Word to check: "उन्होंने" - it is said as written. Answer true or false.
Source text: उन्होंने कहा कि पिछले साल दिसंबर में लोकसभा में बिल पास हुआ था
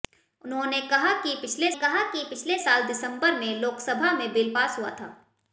true